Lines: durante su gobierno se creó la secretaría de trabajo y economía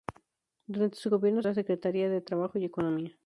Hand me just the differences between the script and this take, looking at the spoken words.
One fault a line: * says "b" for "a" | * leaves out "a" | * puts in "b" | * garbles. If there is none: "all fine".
* leaves out "se creó"